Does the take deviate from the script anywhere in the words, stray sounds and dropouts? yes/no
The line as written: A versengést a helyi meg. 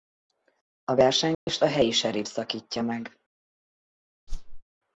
yes